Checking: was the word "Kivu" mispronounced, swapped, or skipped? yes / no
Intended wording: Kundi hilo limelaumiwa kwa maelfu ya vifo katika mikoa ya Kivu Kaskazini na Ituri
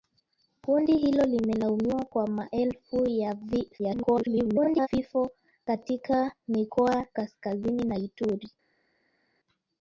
yes